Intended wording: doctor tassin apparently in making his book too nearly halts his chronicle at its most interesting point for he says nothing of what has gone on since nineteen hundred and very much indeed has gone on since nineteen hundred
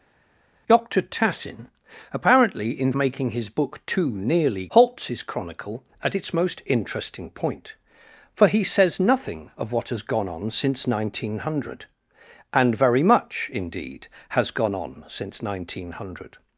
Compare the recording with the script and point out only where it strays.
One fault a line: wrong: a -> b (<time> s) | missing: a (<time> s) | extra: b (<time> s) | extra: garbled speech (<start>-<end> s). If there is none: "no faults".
no faults